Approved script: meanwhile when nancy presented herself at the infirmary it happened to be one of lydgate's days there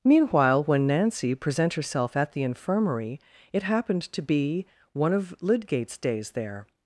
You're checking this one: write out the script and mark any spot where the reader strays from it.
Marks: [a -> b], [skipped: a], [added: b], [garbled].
meanwhile when nancy [presented -> present] herself at the infirmary it happened to be one of lydgate's days there